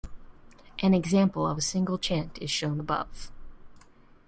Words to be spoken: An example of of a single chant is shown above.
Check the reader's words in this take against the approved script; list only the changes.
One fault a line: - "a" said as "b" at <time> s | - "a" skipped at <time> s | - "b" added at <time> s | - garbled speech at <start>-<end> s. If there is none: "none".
- "of" skipped at 1.6 s